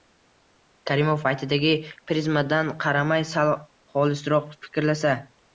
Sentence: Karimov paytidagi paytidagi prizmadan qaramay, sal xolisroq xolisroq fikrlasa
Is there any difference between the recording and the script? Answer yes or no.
yes